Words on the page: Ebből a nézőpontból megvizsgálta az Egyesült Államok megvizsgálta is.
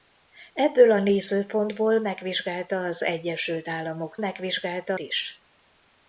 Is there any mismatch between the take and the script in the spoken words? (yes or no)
no